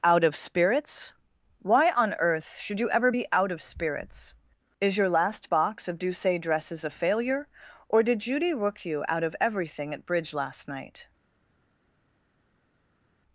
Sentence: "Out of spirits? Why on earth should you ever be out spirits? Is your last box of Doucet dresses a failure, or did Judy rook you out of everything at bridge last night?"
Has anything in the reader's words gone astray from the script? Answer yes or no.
yes